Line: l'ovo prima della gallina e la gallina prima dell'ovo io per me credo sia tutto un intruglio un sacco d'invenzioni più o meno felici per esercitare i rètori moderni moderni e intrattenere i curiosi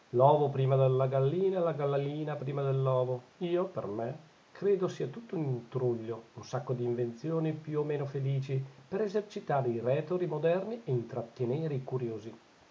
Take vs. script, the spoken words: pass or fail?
fail